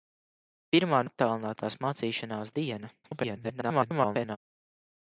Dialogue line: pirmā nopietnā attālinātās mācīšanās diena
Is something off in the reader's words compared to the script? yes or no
yes